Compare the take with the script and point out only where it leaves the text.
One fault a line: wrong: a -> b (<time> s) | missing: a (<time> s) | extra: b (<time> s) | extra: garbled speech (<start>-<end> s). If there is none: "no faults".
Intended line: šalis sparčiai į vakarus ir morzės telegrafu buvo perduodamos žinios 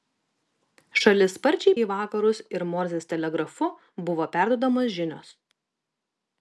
no faults